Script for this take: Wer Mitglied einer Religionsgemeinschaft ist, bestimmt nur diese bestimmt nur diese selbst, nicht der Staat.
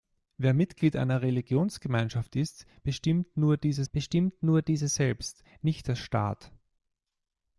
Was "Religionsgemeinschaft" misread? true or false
false